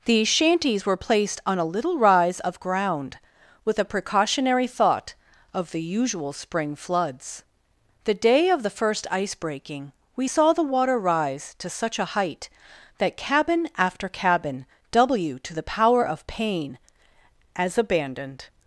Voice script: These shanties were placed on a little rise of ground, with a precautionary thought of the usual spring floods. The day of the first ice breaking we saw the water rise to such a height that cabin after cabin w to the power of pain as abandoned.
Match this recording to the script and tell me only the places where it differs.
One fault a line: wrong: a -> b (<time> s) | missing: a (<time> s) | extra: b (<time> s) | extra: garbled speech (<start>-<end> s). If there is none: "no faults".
no faults